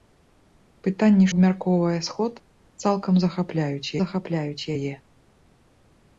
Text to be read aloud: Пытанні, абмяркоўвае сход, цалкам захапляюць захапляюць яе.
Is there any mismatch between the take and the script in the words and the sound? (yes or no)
no